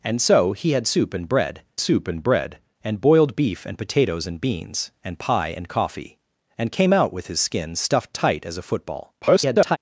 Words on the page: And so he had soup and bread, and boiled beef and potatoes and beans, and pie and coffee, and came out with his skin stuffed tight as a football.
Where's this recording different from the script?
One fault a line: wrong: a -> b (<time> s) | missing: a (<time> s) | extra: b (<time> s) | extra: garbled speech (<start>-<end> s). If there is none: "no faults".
extra: soup and bread (1.8 s)
extra: garbled speech (9.2-9.8 s)